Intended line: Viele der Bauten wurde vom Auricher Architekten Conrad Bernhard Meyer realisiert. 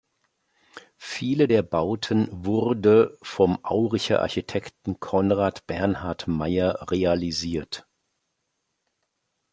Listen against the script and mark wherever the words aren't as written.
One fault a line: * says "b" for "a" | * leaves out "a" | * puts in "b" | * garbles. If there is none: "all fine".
all fine